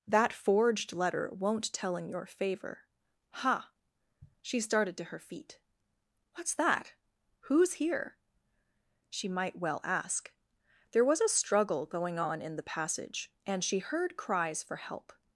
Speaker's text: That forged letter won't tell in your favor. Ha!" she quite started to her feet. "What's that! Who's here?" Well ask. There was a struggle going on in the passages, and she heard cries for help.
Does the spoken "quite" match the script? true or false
false